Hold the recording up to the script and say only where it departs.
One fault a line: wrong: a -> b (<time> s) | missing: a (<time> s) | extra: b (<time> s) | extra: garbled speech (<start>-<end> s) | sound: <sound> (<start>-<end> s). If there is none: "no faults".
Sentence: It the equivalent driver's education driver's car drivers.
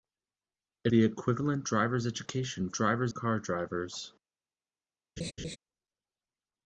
sound: laugh (5.2-5.6 s)